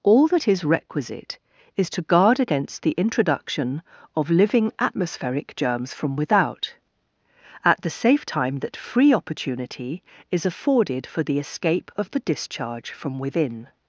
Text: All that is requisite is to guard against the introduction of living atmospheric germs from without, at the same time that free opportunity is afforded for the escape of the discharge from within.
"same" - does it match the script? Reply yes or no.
no